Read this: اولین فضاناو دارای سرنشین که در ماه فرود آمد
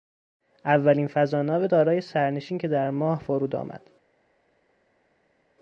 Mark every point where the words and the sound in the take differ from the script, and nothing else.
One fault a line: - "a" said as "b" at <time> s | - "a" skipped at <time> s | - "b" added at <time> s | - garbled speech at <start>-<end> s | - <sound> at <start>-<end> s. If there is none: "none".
none